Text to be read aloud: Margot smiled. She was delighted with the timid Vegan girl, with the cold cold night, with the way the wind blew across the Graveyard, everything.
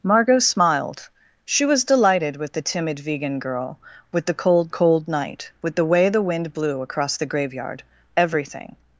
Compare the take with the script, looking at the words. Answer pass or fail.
pass